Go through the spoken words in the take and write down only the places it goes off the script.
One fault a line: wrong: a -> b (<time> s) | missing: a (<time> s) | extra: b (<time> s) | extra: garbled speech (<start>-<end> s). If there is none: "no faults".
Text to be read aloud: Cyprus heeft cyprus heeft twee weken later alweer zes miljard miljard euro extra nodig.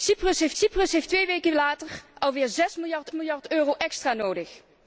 no faults